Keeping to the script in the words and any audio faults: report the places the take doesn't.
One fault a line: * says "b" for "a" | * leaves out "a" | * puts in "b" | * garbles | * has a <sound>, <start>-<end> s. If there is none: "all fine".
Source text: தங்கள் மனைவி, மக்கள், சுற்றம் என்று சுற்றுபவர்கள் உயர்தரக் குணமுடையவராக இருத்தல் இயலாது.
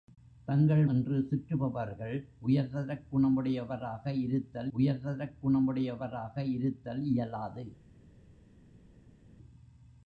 * says "என்று சுற்றுபவர்கள் உயர்தரக் குணமுடையவராக இருத்தல்" for "மனைவி மக்கள் சுற்றம் என்று சுற்றுபவர்கள்"